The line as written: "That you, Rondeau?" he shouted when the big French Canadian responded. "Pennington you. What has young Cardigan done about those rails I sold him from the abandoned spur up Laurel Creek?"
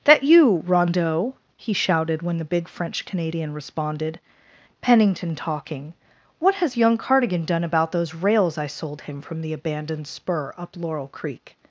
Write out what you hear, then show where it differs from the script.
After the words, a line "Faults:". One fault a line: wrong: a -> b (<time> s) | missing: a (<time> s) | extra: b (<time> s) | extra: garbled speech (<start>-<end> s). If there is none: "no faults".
"That you, Rondeau?" he shouted when the big French Canadian responded. "Pennington talking. What has young Cardigan done about those rails I sold him from the abandoned spur up Laurel Creek?"
Faults:
wrong: you -> talking (5.3 s)